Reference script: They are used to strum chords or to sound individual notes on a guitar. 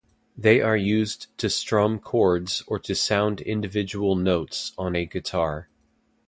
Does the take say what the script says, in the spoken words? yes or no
yes